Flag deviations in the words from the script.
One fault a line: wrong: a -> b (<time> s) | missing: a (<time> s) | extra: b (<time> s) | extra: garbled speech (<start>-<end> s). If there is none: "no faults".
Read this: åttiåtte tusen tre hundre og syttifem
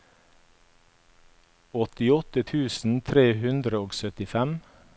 no faults